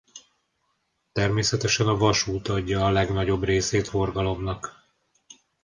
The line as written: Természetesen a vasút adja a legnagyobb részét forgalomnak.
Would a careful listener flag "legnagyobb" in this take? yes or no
no